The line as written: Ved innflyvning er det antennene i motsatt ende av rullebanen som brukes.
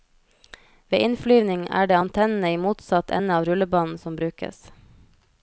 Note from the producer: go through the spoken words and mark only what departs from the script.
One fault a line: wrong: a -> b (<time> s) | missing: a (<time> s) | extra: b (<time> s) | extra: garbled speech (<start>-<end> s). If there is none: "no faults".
no faults